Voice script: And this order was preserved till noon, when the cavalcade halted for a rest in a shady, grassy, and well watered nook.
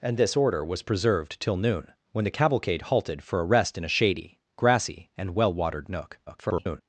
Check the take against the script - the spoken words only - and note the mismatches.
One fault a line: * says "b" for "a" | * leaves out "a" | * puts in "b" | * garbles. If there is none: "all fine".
* garbles